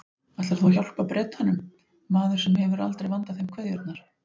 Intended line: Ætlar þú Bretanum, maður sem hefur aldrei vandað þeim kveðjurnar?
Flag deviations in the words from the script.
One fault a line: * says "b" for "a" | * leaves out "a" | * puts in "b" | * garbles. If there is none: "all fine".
* puts in "að hjálpa"